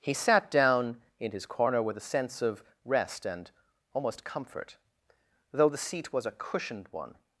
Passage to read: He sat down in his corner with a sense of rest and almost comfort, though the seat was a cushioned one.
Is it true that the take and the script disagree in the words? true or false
false